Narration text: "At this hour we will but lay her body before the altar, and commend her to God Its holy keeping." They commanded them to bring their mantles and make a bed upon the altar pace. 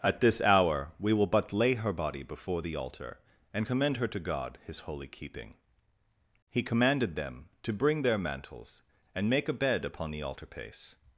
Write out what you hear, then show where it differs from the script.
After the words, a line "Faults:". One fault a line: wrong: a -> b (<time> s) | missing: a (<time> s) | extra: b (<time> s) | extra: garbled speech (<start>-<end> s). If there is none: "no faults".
"At this hour we will but lay her body before the altar, and commend her to God His holy keeping." He commanded them to bring their mantles and make a bed upon the altar pace.
Faults:
wrong: Its -> His (4.6 s)
wrong: They -> He (6.5 s)